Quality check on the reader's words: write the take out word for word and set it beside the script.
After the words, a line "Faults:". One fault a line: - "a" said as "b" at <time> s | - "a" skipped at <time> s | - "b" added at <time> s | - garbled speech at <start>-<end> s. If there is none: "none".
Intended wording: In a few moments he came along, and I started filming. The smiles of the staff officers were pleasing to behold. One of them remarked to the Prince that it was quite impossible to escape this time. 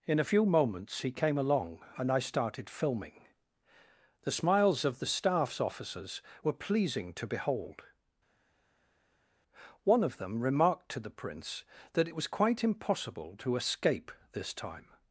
In a few moments he came along, and I started filming. The smiles of the staffs officers were pleasing to behold. One of them remarked to the Prince that it was quite impossible to escape this time.
Faults:
- "staff" said as "staffs" at 5.1 s